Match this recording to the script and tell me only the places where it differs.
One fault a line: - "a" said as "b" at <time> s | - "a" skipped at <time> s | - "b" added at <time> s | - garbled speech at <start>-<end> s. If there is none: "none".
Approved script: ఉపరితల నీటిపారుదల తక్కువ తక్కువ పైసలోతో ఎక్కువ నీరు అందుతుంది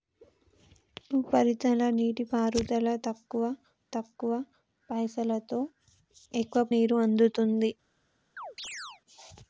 none